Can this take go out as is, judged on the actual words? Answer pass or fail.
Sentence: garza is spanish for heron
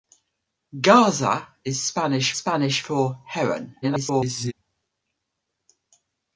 fail